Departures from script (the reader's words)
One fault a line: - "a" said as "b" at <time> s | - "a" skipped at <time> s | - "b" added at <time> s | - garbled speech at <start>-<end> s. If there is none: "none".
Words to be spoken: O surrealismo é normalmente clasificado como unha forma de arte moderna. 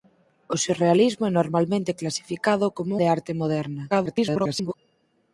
- "unha forma" skipped at 2.9 s
- garbled speech at 3.9-4.7 s